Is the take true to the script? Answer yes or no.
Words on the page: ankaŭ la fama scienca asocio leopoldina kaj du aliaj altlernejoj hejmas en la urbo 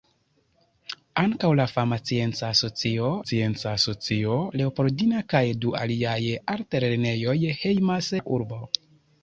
no